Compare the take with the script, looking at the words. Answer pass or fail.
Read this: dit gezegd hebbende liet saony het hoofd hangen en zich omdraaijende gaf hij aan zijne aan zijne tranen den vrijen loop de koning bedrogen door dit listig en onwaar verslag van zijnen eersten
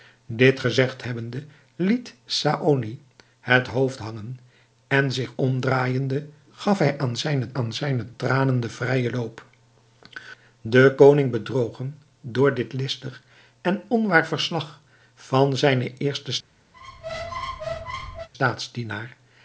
pass